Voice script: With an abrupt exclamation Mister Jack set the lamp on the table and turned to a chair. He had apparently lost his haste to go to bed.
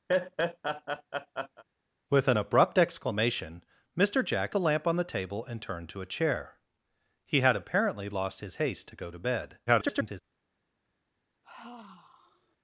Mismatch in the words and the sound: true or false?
true